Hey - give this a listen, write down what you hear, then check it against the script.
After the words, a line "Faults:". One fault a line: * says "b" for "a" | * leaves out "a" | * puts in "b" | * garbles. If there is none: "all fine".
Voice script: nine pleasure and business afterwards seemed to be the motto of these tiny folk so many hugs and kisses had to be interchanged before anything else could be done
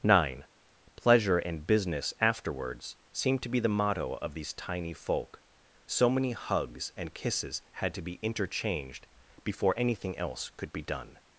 nine pleasure and business afterwards seemed to be the motto of these tiny folk so many hugs and kisses had to be interchanged before anything else could be done
Faults:
all fine